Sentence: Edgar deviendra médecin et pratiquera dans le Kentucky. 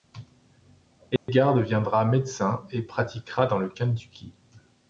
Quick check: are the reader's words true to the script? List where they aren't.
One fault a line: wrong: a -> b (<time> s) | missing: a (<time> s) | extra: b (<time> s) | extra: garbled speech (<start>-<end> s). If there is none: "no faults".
no faults